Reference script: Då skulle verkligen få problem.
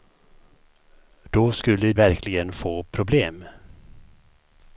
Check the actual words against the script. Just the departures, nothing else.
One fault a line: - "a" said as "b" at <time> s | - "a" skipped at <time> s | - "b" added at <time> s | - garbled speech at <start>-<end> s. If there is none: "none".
none